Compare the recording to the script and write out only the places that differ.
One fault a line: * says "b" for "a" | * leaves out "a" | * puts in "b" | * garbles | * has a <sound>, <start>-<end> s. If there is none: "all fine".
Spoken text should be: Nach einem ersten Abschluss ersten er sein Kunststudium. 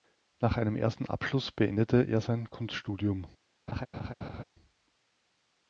* says "beendete" for "ersten"
* has a laugh, 3.7-4.4 s